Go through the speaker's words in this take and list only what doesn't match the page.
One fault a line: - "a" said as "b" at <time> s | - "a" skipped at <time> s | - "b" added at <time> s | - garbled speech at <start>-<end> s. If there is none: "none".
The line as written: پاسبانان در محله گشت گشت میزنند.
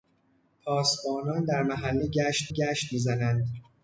none